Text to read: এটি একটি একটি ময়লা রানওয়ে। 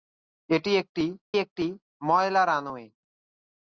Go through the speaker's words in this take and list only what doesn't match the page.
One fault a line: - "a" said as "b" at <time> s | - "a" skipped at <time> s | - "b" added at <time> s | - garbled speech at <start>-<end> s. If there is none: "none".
none